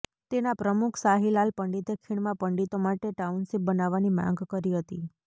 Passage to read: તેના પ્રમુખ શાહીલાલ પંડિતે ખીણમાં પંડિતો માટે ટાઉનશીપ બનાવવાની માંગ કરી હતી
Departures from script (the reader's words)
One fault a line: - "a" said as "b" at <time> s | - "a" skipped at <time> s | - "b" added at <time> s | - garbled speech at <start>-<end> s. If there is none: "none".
none